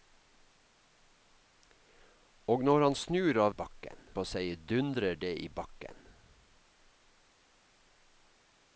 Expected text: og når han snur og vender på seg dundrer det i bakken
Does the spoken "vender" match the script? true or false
false